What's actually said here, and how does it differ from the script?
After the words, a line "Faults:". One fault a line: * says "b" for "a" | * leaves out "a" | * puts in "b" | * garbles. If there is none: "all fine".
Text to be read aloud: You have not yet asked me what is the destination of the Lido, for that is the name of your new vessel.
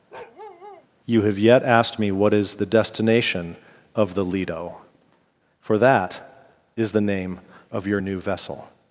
You have yet asked me what is the destination of the Lido, for that is the name of your new vessel.
Faults:
* leaves out "not"